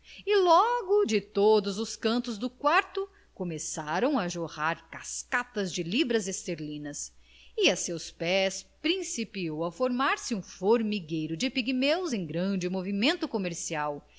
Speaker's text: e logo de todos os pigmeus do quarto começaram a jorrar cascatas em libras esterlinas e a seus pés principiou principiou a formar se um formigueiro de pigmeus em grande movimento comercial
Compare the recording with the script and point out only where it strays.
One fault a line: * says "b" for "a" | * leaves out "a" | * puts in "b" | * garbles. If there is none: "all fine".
* says "cantos" for "pigmeus"
* says "de" for "em"
* leaves out "principiou"